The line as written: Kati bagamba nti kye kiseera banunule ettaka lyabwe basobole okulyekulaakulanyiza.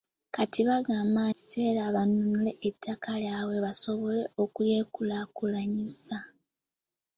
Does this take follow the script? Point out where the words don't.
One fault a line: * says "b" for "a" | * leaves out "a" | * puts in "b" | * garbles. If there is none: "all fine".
* leaves out "nti kye"